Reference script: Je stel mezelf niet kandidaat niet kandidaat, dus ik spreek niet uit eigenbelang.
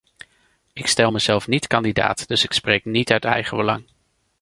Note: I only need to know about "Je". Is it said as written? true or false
false